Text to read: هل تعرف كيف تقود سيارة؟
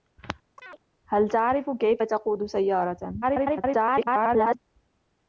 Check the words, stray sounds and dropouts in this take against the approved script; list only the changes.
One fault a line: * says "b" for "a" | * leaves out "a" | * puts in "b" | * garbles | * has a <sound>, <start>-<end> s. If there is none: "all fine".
* has a chirp, 0.6-0.8 s
* garbles